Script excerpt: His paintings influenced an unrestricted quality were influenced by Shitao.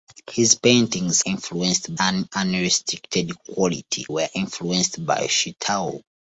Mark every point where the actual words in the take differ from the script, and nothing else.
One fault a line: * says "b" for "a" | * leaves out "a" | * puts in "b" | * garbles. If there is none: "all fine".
all fine